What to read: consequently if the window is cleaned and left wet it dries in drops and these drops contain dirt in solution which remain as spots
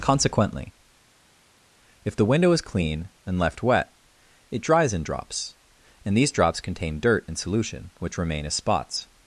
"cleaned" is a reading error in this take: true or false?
true